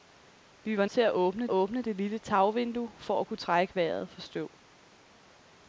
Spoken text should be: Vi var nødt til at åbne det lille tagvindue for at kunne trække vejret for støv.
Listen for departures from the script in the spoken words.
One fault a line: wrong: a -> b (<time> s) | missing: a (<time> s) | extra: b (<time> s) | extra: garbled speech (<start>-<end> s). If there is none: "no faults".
missing: nødt (0.8 s)
extra: åbne (1.5 s)